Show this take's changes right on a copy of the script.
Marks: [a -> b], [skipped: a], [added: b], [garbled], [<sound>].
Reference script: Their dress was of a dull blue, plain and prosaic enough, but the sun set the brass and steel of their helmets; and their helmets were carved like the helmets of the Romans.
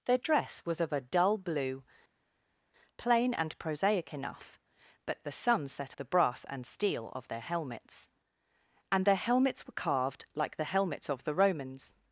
Their dress was of a dull blue, plain and prosaic enough, but the sun set the brass and steel of their helmets; and their helmets were carved like the helmets of the Romans.